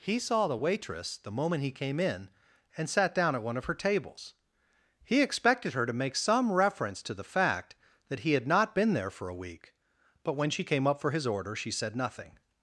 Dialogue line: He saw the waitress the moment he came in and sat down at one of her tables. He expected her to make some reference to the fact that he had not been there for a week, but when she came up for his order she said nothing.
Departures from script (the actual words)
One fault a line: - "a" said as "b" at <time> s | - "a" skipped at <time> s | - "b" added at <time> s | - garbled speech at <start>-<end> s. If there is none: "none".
none